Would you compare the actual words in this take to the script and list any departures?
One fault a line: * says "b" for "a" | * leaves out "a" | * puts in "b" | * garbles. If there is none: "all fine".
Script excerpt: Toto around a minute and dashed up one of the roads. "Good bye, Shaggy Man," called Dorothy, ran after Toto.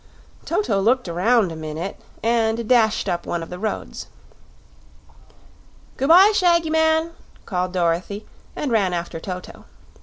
* puts in "looked"
* puts in "and"